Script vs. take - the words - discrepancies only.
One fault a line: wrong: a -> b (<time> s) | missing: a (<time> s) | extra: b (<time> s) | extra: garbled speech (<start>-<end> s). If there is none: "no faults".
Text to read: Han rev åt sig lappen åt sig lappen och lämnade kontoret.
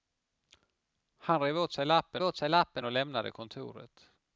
no faults